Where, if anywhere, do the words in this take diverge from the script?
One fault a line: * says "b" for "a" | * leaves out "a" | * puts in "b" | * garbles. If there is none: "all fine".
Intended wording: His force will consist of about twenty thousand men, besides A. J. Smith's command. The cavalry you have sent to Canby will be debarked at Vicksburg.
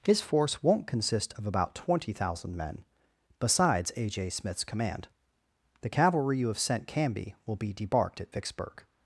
* says "won't" for "will"
* leaves out "to"